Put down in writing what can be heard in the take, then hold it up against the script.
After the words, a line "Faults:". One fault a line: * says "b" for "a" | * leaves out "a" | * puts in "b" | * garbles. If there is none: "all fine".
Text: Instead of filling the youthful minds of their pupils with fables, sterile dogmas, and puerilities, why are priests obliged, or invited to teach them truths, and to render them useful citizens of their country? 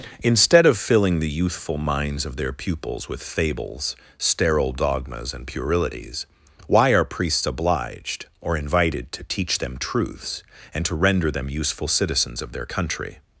Instead of filling the youthful minds of their pupils with fables, sterile dogmas, and puerilities, why are priests obliged, or invited to teach them truths, and to render them useful citizens of their country?
Faults:
all fine